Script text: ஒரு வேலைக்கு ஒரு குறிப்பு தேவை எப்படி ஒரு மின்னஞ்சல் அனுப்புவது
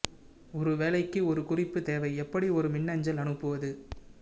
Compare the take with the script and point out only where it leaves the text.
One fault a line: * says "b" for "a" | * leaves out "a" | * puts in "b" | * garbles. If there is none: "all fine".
all fine